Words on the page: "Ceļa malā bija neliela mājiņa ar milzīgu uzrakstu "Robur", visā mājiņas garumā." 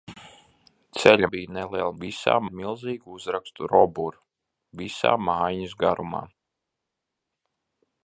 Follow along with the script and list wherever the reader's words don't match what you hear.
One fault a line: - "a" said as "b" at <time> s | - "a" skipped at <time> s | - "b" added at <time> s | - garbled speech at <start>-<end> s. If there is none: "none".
- "malā" skipped at 1.3 s
- "mājiņa" said as "visā" at 2.0 s